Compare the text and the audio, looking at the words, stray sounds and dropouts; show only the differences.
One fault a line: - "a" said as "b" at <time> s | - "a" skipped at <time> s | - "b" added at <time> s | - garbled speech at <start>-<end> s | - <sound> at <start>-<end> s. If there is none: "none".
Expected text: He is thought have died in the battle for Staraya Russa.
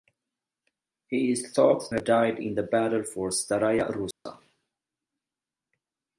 - dropout at 4.1-4.3 s